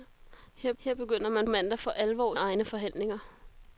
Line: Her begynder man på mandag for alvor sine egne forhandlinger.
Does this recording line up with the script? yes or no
no